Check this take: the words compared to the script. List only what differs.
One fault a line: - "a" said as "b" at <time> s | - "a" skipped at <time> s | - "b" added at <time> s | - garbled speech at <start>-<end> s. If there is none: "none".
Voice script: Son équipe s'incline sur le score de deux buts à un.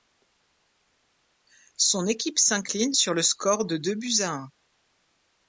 none